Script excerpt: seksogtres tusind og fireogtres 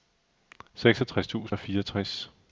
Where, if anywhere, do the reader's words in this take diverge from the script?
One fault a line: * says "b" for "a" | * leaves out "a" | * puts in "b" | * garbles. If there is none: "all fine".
all fine